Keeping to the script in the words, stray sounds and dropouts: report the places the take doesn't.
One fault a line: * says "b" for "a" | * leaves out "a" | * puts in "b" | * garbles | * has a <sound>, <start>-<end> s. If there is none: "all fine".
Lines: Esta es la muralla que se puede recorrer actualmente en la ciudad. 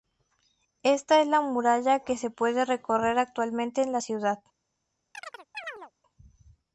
* has a chirp, 5.1-5.9 s